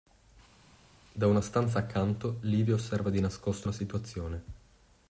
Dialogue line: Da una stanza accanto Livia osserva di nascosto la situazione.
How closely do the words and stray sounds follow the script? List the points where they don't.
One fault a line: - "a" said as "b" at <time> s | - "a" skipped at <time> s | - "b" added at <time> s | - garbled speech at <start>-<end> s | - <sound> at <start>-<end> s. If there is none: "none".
none